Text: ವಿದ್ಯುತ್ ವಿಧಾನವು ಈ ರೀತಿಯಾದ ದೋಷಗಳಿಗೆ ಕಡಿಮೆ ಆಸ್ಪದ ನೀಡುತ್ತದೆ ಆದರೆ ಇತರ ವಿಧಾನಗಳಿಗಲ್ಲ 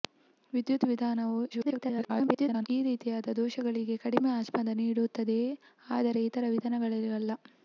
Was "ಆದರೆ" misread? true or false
false